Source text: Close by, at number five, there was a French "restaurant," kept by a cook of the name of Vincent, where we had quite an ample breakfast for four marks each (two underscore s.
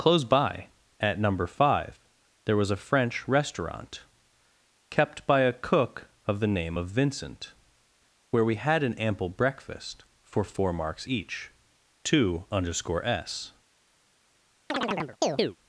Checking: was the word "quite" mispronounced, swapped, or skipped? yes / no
yes